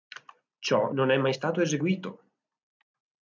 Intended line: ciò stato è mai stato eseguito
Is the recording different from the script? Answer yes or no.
yes